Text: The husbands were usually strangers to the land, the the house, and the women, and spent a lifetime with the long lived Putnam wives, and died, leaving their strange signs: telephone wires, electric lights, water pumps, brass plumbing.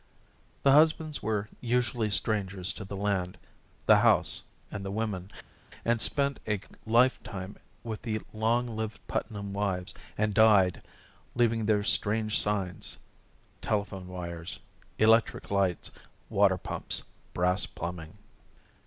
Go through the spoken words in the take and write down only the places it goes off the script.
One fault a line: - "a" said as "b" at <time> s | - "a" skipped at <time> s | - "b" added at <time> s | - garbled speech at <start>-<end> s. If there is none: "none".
- "the" skipped at 4.0 s